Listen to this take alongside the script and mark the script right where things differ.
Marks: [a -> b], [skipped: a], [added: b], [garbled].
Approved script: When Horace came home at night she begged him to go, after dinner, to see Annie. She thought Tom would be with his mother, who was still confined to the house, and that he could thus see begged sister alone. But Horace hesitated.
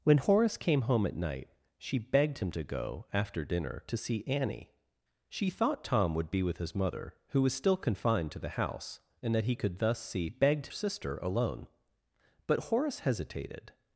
When Horace came home at night she begged him to go, after dinner, to see Annie. She thought Tom would be with his mother, who was still confined to the house, and that he could thus see begged sister alone. But Horace hesitated.